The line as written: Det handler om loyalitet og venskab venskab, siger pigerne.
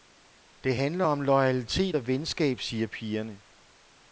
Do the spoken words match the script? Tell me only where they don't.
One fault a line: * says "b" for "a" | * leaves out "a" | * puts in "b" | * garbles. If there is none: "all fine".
* leaves out "venskab"